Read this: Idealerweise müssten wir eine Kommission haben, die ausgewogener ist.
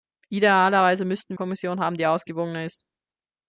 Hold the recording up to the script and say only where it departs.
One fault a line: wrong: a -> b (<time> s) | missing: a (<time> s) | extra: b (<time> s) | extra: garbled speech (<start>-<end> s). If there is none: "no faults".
missing: wir eine (1.4 s)